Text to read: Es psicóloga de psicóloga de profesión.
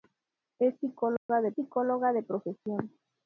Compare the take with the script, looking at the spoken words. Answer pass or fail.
pass